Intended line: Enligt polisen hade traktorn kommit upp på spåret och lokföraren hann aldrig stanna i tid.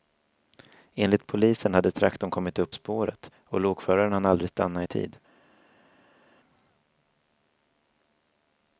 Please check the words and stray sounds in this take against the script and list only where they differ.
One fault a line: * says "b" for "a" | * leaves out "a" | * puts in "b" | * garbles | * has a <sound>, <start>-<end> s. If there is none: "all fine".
* leaves out "på"